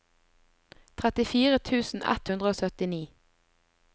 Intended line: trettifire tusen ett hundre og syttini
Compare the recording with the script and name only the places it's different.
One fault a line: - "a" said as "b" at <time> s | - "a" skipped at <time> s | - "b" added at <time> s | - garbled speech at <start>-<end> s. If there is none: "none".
none